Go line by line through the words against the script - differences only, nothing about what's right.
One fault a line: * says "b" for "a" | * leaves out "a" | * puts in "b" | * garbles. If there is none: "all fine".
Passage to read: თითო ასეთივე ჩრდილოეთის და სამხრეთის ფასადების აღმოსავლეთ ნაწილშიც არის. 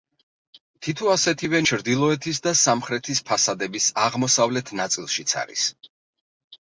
all fine